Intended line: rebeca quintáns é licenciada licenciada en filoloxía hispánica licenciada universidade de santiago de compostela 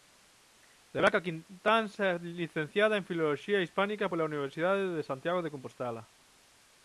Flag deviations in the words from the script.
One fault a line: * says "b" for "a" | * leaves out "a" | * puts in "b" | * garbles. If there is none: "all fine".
* leaves out "licenciada"
* says "pola" for "licenciada"